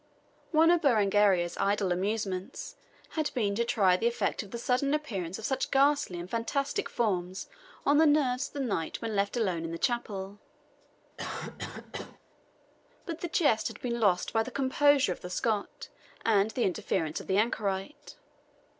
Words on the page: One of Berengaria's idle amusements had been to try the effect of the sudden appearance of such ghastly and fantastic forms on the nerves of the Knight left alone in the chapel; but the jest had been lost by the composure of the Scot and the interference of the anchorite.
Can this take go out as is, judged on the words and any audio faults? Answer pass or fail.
fail